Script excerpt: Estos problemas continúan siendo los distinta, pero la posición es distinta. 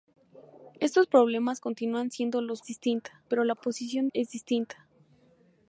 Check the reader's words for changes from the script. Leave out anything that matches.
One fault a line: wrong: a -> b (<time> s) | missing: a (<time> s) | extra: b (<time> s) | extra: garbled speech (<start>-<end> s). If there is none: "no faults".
no faults